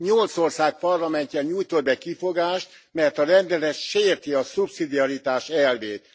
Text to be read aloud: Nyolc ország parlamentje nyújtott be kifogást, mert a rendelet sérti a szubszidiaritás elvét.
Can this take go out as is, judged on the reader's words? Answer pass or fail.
pass